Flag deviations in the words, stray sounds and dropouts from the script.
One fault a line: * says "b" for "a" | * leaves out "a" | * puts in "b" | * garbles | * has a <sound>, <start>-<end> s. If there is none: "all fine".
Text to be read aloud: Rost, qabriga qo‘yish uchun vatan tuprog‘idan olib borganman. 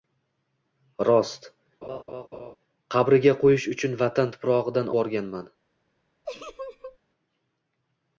* has a laugh, 1.8-2.6 s
* leaves out "olib"
* has a laugh, 6.2-7.0 s